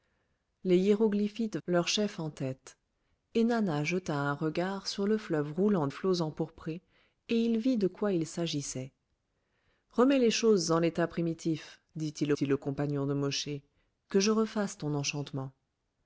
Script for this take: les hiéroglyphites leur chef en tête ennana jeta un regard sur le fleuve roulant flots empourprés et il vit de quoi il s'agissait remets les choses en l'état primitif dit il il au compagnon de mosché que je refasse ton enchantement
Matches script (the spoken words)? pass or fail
pass